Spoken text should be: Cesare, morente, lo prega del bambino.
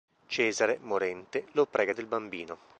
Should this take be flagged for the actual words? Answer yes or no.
no